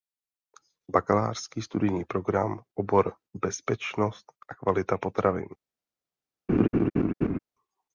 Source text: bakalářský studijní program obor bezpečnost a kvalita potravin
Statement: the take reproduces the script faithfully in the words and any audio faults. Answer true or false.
false